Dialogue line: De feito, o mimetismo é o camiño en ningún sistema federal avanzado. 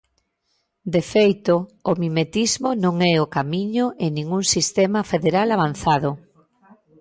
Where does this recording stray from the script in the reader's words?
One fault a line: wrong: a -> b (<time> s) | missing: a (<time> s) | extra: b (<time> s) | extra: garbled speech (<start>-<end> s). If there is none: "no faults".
extra: non (2.8 s)